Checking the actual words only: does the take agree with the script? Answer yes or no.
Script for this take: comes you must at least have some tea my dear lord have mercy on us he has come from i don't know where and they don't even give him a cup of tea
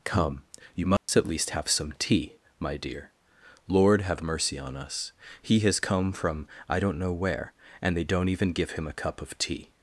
no